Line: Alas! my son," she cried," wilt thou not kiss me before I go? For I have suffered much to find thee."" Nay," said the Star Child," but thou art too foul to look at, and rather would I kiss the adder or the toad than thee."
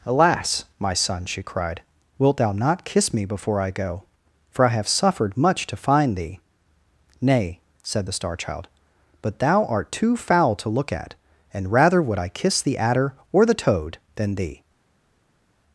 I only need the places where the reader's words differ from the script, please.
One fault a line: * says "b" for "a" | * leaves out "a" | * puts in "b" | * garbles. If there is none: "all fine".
all fine